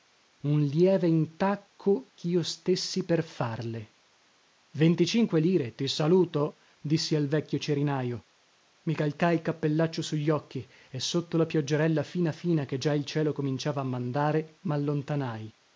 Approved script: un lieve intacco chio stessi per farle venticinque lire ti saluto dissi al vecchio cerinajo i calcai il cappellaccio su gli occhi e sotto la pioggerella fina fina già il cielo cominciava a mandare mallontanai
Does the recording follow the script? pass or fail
fail